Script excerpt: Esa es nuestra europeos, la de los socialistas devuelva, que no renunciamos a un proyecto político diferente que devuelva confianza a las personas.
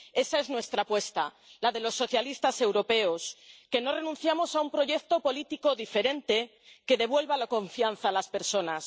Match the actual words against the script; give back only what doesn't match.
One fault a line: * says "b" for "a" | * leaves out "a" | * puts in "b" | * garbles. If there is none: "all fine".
* says "apuesta" for "europeos"
* says "europeos" for "devuelva"
* puts in "la"